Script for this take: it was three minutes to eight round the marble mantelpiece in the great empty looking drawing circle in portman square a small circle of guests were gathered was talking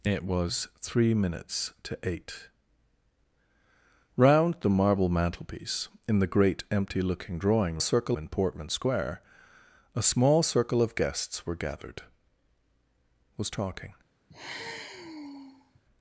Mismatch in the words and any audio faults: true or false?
true